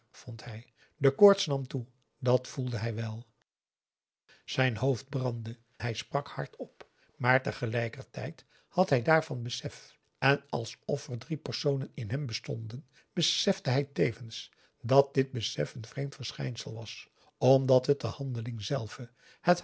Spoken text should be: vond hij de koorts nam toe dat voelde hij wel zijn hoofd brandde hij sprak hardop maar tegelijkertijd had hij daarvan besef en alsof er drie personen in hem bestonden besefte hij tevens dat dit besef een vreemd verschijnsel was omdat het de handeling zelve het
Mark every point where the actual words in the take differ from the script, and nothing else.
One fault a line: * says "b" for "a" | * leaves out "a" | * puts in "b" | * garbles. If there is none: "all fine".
all fine